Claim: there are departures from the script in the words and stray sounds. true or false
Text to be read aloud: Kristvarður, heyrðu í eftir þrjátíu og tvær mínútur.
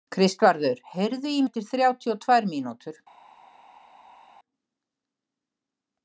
false